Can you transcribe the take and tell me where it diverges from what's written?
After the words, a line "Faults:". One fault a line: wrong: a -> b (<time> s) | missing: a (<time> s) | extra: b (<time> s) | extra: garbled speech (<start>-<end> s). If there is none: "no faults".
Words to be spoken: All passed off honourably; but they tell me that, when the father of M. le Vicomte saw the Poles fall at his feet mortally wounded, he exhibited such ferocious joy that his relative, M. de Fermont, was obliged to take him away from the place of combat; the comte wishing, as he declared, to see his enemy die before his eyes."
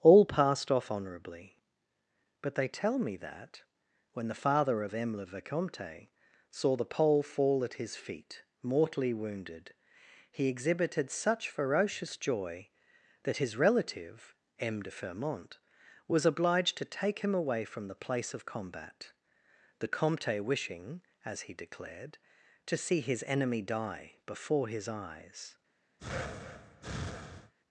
All passed off honourably; but they tell me that, when the father of M. le Vicomte saw the Pole fall at his feet mortally wounded, he exhibited such ferocious joy that his relative, M. de Fermont, was obliged to take him away from the place of combat; the comte wishing, as he declared, to see his enemy die before his eyes."
Faults:
wrong: Poles -> Pole (6.9 s)